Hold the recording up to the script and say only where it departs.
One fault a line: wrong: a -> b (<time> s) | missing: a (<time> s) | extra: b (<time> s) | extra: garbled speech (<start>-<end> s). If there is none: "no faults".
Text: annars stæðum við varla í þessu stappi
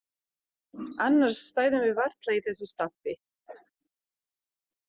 no faults